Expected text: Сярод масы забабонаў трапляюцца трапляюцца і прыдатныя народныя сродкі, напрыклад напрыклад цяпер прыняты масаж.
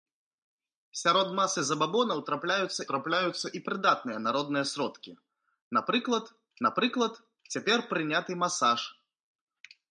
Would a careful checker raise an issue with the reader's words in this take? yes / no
no